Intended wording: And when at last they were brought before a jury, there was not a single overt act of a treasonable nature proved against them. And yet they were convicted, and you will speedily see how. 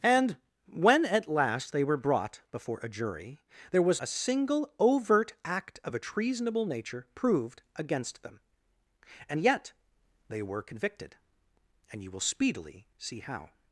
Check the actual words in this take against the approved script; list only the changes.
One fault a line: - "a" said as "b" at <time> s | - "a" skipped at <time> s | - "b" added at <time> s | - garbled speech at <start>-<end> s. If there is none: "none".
- "not" skipped at 4.0 s